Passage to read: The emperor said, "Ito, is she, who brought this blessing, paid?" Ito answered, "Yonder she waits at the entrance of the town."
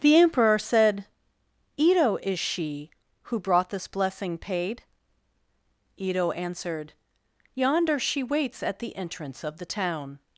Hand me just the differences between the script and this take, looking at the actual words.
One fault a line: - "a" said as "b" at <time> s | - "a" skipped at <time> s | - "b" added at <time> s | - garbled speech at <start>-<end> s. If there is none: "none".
none